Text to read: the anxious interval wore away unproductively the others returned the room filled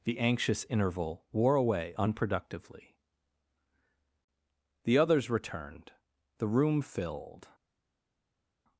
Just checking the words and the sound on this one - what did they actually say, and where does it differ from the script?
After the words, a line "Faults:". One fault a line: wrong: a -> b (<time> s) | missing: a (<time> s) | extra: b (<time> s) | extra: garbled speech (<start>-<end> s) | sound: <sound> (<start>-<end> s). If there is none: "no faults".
the anxious interval wore away unproductively the others returned the room filled
Faults:
no faults